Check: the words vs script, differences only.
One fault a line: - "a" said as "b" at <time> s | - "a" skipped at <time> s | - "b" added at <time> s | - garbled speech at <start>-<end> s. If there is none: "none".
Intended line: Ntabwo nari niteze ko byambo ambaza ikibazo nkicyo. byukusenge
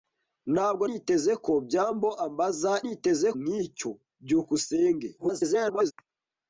- "nari" skipped at 0.8 s
- "ikibazo" said as "niteze" at 2.8 s
- garbled speech at 5.2-5.9 s